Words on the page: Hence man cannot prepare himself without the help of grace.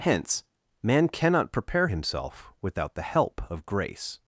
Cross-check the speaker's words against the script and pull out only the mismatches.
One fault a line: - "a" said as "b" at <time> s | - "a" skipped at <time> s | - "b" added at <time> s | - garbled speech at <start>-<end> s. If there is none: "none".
none